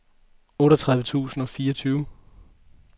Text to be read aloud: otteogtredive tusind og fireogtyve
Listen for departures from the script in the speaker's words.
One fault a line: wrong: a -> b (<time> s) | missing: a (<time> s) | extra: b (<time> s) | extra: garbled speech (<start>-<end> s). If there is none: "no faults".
no faults